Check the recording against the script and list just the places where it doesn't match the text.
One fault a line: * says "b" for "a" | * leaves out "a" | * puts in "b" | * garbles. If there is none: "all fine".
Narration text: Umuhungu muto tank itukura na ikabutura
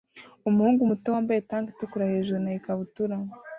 * puts in "wambaye"
* puts in "hejuru"